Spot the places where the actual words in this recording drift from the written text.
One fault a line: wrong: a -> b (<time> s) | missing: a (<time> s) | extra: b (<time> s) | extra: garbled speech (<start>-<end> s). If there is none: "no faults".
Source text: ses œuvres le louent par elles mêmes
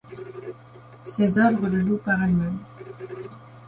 no faults